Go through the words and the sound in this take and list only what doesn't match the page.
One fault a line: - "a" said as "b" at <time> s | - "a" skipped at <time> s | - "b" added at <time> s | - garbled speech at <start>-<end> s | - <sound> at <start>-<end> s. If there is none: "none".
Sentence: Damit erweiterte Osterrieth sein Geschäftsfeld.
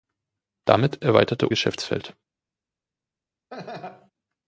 - "Osterrieth sein" skipped at 1.5 s
- laugh at 3.5-4.1 s